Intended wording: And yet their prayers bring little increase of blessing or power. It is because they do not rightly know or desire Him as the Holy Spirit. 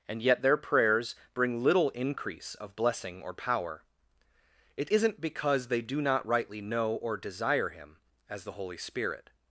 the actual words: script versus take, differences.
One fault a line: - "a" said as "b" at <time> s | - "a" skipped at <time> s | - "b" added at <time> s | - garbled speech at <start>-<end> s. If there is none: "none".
- "is" said as "isn't" at 4.9 s